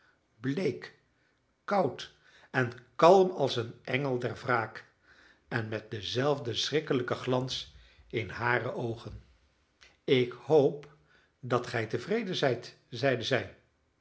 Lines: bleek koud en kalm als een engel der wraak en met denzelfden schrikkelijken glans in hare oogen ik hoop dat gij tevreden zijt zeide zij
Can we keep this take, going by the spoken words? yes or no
yes